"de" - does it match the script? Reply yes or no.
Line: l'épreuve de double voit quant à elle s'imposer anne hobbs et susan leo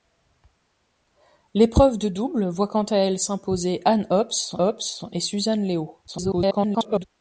yes